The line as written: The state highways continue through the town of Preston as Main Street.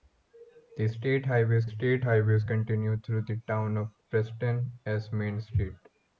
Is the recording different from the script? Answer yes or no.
yes